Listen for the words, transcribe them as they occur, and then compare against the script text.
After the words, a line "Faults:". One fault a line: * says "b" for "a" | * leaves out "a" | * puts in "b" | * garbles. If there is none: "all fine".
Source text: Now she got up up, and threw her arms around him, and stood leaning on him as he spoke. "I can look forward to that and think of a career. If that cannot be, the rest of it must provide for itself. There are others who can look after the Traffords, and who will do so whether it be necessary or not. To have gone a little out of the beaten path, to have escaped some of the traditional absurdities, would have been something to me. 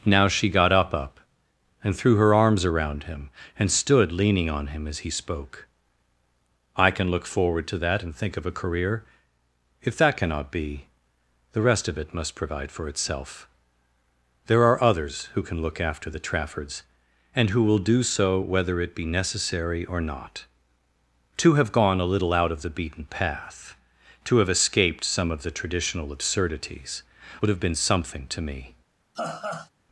Now she got up up, and threw her arms around him, and stood leaning on him as he spoke. "I can look forward to that and think of a career. If that cannot be, the rest of it must provide for itself. There are others who can look after the Traffords, and who will do so whether it be necessary or not. To have gone a little out of the beaten path, to have escaped some of the traditional absurdities, would have been something to me.
Faults:
all fine